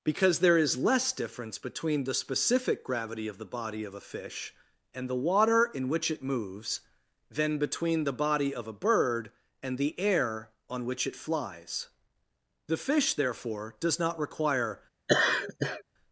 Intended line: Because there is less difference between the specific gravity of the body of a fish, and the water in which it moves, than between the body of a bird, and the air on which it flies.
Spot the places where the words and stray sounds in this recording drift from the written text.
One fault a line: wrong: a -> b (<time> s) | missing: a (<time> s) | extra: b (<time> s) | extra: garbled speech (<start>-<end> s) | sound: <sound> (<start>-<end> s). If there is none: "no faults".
extra: The fish therefore does not require (12.7 s)
sound: laugh (15.1-15.8 s)